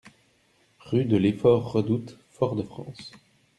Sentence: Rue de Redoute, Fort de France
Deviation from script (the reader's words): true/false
true